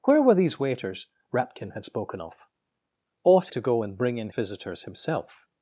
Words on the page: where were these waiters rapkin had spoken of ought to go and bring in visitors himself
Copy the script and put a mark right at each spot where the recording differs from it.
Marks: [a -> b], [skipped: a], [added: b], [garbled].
where were these waiters rapkin had spoken of ought to go and bring in visitors himself